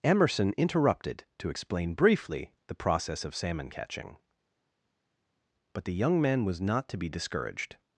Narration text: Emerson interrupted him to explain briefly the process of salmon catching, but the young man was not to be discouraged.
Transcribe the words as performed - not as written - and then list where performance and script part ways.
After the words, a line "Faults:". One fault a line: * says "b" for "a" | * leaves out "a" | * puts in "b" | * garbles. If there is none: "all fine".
Emerson interrupted to explain briefly the process of salmon catching, but the young man was not to be discouraged.
Faults:
* leaves out "him"